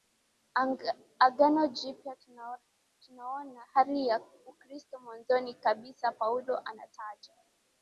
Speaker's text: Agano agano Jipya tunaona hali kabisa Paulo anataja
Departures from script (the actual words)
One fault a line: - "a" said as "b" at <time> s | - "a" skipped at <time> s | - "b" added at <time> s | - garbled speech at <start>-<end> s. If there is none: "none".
- "agano" skipped at 1.7 s
- "ya Ukristo mwanzoni" added at 4.1 s